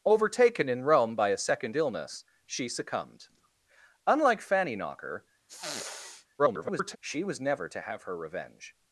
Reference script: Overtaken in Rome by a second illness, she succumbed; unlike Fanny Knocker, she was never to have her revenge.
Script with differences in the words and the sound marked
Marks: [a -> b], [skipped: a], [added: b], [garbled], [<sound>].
Overtaken in Rome by a second illness, she succumbed; unlike Fanny Knocker, [sniff] [garbled] she was never to have her revenge.